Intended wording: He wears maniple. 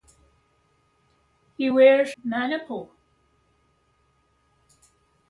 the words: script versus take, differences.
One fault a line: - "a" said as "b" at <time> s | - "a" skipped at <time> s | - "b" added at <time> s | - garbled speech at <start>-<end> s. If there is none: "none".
none